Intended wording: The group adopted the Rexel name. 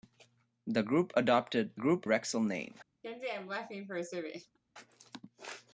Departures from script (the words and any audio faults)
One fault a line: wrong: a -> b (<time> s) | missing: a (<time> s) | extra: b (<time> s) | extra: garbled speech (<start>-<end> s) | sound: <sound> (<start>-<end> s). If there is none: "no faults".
wrong: the -> group (1.7 s)
sound: laugh (3.0-4.6 s)